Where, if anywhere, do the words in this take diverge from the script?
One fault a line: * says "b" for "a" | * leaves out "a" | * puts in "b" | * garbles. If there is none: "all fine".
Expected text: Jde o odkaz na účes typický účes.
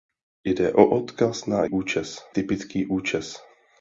all fine